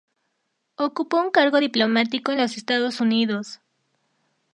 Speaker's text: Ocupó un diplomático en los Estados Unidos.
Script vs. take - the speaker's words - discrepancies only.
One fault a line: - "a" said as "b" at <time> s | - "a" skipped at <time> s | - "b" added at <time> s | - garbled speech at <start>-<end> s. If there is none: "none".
- "cargo" added at 1.3 s